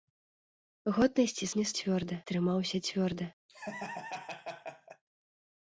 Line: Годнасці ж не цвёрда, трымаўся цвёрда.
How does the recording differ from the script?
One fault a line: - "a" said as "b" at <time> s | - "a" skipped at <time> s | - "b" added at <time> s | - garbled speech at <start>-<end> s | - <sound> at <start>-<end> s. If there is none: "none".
- laugh at 3.5-5.0 s